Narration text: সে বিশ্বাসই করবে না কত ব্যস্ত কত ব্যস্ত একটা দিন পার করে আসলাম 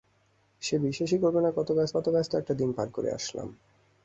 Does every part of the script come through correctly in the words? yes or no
yes